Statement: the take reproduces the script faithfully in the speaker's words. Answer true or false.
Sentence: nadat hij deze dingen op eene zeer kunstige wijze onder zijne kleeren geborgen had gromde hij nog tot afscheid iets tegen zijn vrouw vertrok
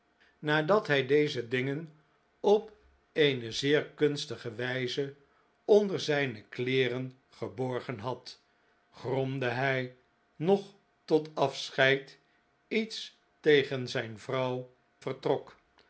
true